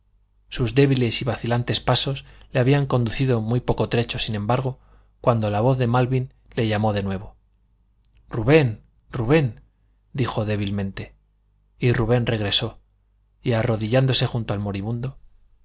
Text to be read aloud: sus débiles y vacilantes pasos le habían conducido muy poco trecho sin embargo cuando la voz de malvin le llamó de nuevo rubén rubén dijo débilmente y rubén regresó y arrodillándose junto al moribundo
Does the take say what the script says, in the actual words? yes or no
yes